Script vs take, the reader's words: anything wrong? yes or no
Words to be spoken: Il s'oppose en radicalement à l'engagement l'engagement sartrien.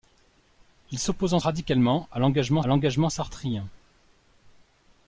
no